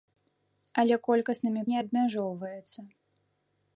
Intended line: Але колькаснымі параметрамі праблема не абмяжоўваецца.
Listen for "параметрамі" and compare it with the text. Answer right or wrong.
wrong